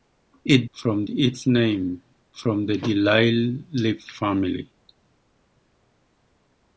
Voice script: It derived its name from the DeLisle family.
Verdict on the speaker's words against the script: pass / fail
fail